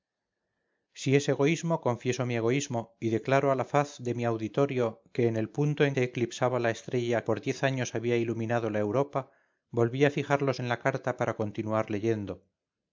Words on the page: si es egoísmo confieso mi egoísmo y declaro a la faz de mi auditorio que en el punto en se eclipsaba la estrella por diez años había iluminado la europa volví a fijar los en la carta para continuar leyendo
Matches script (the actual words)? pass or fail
pass